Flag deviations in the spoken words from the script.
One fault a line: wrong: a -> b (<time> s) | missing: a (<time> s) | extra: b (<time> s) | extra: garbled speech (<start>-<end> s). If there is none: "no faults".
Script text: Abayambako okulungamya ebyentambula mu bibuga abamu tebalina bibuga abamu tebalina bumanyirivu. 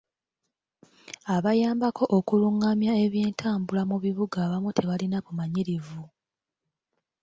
missing: bibuga abamu tebalina (5.2 s)